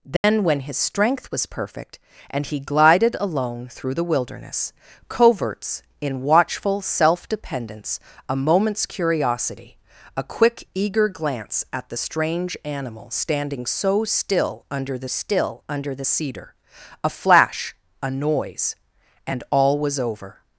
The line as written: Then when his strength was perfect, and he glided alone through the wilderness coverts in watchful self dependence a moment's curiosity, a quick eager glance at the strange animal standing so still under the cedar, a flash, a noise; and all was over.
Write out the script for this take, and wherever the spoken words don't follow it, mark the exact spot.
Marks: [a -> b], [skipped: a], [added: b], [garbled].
Then when his strength was perfect, and he glided alone through the wilderness coverts in watchful self dependence a moment's curiosity, a quick eager glance at the strange animal standing so still under the [added: still under the] cedar, a flash, a noise; and all was over.